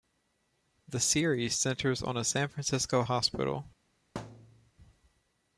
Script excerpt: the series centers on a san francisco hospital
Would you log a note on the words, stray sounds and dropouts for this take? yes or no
yes